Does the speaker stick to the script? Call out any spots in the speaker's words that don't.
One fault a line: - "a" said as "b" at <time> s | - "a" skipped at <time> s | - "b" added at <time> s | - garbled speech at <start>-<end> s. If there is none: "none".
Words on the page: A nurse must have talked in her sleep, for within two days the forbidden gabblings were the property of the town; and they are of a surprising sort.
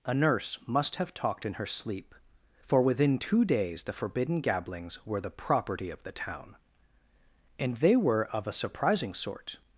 - "are" said as "were" at 8.0 s